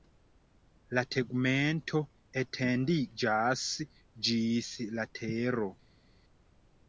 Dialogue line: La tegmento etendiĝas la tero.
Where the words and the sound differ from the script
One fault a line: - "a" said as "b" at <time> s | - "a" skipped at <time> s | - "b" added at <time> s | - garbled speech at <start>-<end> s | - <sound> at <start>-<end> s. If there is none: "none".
- "ĝis" added at 4.3 s